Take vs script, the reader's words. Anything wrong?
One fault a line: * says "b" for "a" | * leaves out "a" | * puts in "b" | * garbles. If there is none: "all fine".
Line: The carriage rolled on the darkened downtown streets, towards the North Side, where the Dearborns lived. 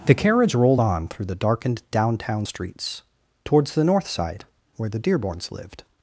* puts in "through"